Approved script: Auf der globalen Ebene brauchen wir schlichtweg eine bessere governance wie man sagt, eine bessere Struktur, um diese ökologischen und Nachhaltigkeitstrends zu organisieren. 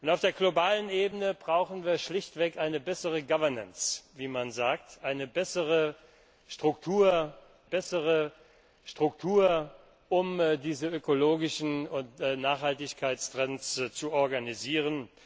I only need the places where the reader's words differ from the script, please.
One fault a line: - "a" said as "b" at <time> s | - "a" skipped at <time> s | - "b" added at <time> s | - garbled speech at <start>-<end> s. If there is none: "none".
- "bessere Struktur" added at 7.6 s